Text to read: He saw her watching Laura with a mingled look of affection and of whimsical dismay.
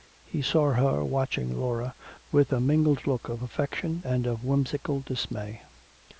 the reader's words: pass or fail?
pass